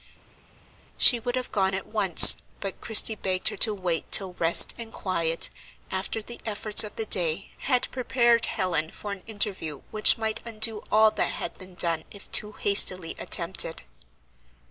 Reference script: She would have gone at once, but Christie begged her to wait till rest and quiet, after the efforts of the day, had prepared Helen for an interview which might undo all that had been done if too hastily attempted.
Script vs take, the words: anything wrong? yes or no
no